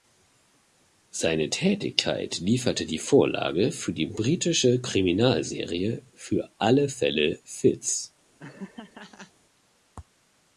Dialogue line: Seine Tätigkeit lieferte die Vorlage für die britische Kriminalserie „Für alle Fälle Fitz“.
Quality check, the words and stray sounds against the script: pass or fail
fail